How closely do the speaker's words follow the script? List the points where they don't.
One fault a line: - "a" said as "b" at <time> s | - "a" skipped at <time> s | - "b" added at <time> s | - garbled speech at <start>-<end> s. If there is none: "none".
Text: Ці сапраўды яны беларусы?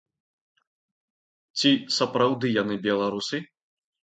none